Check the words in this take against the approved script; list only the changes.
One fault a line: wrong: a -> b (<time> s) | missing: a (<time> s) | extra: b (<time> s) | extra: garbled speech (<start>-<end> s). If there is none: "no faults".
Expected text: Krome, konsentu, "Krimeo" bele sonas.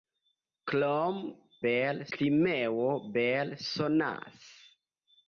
wrong: konsentu -> bele (1.6 s)